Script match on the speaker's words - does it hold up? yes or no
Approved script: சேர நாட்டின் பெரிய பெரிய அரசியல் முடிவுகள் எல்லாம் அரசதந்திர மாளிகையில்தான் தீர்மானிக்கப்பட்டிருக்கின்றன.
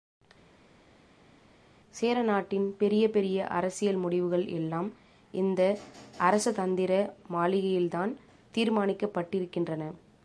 no